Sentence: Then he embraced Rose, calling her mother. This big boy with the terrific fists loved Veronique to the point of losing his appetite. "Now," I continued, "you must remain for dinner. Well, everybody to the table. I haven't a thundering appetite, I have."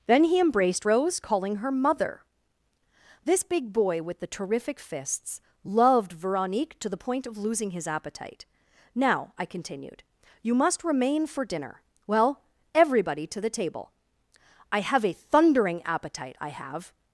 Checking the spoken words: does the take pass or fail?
fail